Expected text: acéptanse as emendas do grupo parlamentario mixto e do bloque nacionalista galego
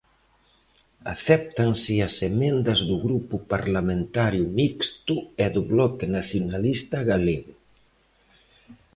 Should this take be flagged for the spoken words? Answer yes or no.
no